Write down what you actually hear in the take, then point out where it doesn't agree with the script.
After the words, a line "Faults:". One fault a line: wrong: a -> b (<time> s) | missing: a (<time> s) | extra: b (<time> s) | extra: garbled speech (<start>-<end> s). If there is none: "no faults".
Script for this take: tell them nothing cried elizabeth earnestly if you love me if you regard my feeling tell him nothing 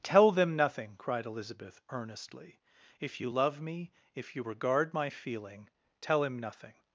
tell them nothing cried elizabeth earnestly if you love me if you regard my feeling tell him nothing
Faults:
no faults